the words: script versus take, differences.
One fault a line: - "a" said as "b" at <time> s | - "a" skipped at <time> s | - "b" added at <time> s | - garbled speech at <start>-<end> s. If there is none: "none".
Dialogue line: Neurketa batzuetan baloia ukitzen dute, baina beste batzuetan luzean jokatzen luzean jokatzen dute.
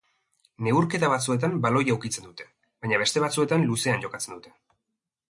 - "luzean jokatzen" skipped at 4.4 s